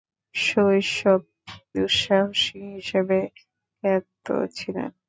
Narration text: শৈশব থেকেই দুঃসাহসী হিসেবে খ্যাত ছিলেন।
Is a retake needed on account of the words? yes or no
yes